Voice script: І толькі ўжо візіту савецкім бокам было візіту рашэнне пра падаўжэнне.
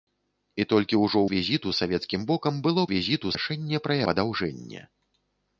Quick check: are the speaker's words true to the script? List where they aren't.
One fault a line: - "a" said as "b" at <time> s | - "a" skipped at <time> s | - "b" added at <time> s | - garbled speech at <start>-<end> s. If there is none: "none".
none